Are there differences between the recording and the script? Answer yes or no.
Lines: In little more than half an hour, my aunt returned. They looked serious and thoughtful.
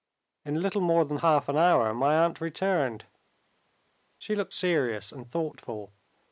yes